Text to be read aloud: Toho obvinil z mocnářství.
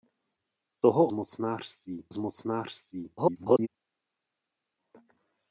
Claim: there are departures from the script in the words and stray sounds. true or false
true